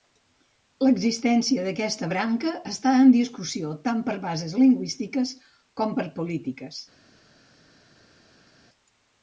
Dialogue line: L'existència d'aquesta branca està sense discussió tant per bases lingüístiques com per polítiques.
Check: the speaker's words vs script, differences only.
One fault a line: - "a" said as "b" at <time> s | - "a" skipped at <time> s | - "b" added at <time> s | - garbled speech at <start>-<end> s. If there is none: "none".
- "sense" said as "en" at 3.0 s